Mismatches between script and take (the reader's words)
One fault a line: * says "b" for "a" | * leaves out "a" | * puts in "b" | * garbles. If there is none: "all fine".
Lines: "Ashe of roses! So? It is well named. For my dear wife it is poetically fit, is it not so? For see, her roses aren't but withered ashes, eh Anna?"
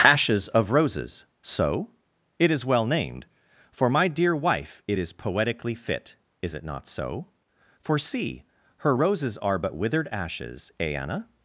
* says "Ashes" for "Ashe"
* says "are" for "aren't"